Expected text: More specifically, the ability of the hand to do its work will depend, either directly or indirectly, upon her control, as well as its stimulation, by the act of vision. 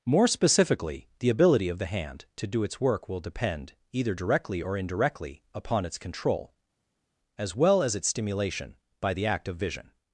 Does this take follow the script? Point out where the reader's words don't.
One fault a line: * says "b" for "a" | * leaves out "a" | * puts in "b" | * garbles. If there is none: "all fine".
* says "its" for "her"